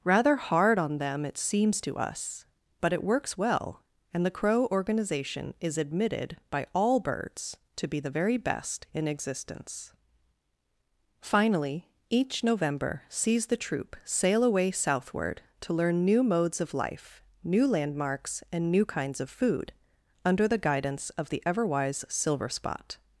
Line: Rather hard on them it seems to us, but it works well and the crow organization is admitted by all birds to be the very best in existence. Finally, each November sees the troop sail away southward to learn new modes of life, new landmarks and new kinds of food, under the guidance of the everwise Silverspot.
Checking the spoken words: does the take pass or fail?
pass